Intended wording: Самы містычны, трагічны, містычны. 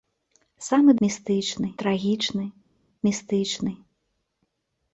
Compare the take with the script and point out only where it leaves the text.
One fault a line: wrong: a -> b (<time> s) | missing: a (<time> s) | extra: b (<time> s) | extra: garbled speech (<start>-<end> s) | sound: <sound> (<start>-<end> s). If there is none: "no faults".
no faults